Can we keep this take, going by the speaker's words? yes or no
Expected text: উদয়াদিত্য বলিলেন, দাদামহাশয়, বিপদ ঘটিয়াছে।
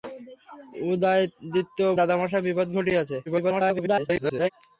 no